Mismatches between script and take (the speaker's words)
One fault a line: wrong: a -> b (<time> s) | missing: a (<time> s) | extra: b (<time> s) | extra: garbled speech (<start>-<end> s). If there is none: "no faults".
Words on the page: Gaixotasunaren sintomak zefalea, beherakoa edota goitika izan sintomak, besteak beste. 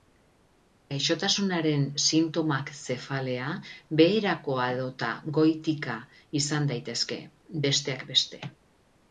wrong: sintomak -> daitezke (6.7 s)